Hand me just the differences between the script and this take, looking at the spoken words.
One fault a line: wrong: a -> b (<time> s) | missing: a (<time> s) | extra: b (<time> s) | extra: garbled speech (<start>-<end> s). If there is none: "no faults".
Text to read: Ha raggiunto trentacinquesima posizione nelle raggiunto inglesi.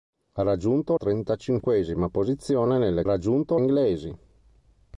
no faults